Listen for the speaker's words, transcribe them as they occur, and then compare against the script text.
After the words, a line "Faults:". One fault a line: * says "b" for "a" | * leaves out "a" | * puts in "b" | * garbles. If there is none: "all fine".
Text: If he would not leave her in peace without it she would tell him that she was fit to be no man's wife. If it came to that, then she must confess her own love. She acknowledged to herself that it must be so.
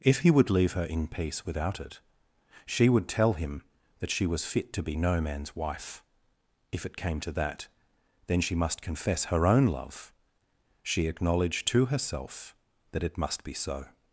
If he would leave her in peace without it she would tell him that she was fit to be no man's wife. If it came to that, then she must confess her own love. She acknowledged to herself that it must be so.
Faults:
* leaves out "not"